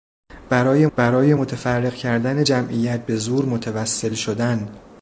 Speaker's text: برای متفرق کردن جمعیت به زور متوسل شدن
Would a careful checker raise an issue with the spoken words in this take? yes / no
yes